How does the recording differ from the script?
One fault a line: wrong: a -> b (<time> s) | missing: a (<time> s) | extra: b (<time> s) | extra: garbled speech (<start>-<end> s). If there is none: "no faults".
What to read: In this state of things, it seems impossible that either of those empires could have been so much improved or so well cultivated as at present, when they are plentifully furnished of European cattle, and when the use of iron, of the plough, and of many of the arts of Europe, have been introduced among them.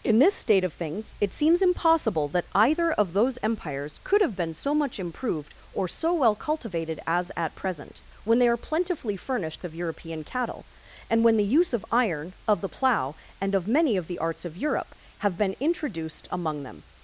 no faults